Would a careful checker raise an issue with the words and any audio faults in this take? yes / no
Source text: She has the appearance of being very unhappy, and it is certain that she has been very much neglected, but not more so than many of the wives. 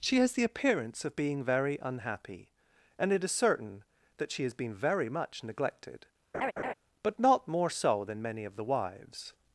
yes